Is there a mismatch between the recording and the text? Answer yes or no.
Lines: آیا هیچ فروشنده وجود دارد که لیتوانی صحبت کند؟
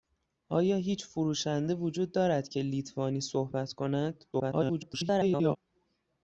yes